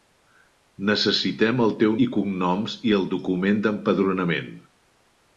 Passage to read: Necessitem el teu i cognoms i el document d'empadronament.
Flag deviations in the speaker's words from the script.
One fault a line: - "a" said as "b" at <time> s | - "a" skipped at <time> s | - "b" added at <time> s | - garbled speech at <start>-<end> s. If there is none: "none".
none